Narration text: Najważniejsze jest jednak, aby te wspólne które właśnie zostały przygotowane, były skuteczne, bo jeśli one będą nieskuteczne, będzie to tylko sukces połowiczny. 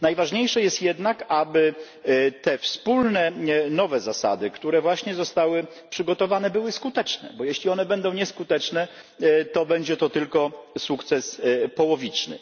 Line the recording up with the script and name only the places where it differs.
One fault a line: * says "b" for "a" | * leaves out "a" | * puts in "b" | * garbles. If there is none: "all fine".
* puts in "nowe zasady"
* puts in "to"